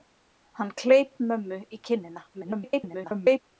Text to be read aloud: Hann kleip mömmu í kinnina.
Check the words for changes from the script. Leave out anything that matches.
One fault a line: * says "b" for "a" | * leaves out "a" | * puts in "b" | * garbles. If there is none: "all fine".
* garbles